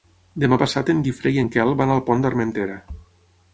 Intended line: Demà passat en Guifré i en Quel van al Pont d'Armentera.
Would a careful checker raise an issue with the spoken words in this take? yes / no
no